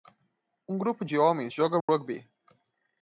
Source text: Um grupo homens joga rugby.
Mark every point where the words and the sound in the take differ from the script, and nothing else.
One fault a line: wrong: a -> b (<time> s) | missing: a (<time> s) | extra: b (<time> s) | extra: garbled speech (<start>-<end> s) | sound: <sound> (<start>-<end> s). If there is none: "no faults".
extra: de (1.0 s)
sound: dropout (1.8-1.9 s)